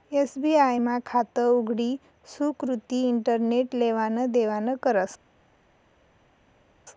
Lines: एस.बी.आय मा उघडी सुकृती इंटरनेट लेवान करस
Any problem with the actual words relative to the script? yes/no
yes